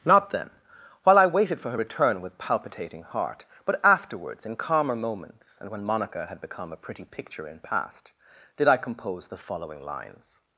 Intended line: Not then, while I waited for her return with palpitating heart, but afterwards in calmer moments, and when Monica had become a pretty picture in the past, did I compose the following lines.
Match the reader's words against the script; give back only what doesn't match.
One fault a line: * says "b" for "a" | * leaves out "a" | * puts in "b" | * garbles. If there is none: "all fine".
* leaves out "the"